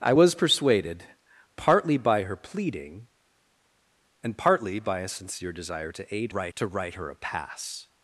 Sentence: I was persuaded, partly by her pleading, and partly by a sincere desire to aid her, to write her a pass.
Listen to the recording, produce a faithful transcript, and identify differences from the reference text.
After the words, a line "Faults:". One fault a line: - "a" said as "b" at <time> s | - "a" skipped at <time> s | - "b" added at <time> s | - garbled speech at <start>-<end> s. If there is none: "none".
I was persuaded, partly by her pleading, and partly by a sincere desire to aid write, to write her a pass.
Faults:
- "her" said as "write" at 6.3 s